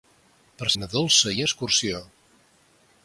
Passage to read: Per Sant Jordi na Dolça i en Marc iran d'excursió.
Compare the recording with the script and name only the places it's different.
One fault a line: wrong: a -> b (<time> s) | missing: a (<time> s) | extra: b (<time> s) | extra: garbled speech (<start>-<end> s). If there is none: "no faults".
missing: Sant Jordi (0.7 s)
missing: en Marc iran (1.4 s)